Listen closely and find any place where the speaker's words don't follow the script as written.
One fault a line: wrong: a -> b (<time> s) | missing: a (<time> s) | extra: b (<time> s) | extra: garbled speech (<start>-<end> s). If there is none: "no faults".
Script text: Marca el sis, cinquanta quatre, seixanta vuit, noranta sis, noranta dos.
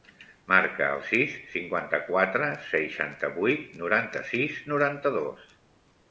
no faults